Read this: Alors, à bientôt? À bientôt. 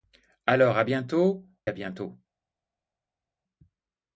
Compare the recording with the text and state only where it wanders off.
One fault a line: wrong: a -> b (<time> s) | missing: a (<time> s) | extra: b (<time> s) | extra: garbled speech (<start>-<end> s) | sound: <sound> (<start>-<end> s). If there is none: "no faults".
no faults